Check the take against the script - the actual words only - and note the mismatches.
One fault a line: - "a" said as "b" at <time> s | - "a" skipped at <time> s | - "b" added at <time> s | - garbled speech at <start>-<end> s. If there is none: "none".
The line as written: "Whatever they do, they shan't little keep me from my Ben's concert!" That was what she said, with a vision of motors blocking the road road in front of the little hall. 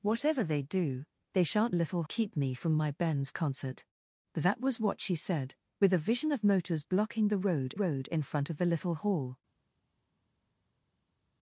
none